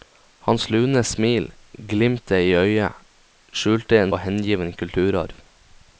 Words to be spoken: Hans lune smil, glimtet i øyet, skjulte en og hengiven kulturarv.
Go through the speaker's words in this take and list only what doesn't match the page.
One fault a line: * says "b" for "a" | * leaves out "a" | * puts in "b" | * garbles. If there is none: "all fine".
all fine